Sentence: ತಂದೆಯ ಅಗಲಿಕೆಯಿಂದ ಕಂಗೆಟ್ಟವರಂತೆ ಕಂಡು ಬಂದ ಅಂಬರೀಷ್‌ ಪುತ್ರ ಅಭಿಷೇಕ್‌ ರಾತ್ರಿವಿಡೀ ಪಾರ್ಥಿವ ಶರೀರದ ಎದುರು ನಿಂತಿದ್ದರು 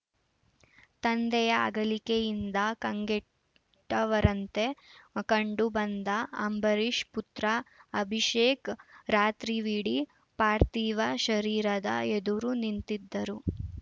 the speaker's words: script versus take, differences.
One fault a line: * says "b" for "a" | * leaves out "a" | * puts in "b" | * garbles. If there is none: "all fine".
all fine